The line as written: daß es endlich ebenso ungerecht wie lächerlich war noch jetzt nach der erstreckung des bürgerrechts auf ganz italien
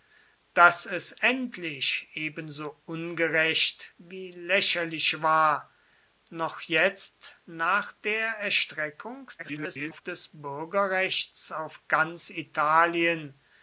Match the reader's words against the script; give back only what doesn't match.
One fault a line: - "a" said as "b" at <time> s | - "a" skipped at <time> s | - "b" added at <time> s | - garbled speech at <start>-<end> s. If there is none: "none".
- garbled speech at 9.4-10.0 s